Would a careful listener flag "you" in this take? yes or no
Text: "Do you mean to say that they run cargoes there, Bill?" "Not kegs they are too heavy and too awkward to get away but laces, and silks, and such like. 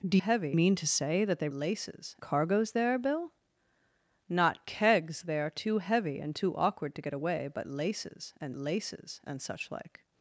yes